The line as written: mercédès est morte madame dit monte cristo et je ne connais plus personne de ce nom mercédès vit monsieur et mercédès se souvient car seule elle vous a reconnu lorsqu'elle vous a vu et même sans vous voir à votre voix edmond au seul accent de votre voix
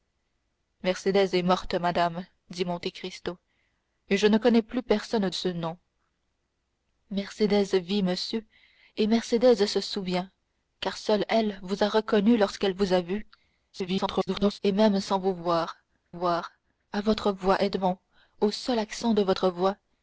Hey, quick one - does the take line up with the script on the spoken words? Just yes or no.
no